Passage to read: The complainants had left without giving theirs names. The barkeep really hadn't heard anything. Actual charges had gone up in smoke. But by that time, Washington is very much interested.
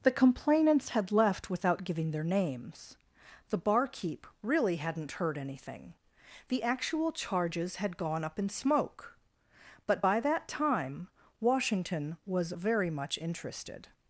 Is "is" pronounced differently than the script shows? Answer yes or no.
yes